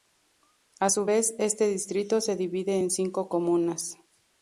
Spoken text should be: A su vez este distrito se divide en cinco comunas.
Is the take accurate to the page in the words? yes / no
yes